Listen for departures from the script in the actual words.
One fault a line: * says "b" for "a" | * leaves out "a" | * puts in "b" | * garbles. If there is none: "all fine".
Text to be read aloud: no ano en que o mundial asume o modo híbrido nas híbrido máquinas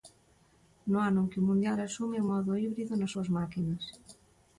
* says "súas" for "híbrido"